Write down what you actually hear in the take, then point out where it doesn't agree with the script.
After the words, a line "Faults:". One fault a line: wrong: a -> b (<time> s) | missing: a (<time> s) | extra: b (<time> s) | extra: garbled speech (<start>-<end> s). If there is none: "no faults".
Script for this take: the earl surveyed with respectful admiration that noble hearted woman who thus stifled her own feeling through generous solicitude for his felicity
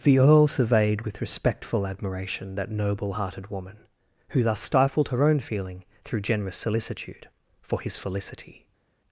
the earl surveyed with respectful admiration that noble hearted woman who thus stifled her own feeling through generous solicitude for his felicity
Faults:
no faults